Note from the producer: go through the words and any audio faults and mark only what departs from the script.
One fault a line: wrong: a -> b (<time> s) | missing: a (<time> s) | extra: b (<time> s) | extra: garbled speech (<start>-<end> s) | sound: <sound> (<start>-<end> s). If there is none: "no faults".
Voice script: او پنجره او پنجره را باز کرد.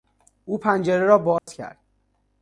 missing: او پنجره (1.1 s)
sound: dropout (1.4-1.5 s)